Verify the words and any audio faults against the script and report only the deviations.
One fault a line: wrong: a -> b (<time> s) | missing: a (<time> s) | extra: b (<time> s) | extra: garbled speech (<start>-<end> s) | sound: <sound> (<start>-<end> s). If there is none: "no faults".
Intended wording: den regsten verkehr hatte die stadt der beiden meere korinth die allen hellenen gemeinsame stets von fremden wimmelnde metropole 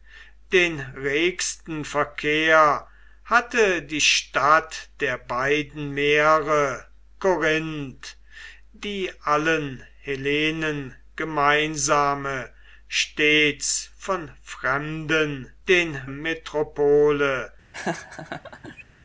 wrong: wimmelnde -> den (15.7 s)
sound: laugh (17.7-18.8 s)